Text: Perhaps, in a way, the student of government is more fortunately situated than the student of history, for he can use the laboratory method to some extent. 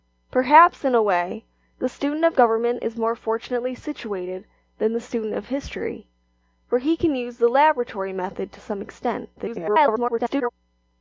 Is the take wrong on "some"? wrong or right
right